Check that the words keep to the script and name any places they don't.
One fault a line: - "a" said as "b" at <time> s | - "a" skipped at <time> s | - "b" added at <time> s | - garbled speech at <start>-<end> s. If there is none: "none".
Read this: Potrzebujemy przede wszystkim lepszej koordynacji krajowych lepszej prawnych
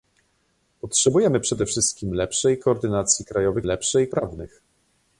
none